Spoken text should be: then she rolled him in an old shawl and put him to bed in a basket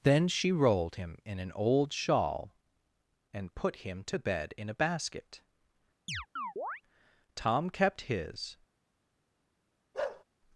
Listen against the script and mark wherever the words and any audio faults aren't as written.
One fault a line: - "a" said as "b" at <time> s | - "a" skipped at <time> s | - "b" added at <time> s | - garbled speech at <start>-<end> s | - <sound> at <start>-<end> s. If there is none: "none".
- chirp at 6.1-6.8 s
- "tom kept his" added at 7.3 s
- bark at 9.9-10.2 s